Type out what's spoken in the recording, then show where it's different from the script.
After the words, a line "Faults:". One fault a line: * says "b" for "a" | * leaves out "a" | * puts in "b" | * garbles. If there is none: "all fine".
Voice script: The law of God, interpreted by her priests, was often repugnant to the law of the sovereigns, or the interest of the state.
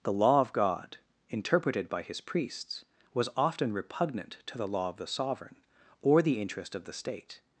The law of God, interpreted by his priests, was often repugnant to the law of the sovereign, or the interest of the state.
Faults:
* says "his" for "her"
* says "sovereign" for "sovereigns"